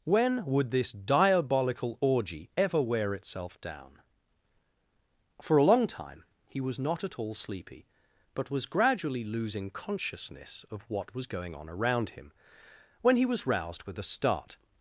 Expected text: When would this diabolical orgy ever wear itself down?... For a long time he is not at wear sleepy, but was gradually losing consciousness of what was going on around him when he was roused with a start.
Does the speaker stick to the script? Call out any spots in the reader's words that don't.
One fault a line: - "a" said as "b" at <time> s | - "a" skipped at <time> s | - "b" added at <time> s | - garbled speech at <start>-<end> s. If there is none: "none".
- "is" said as "was" at 6.6 s
- "wear" said as "all" at 7.2 s